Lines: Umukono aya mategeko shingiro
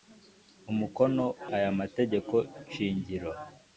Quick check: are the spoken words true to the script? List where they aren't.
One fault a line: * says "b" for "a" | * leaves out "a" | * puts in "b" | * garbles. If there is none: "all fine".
all fine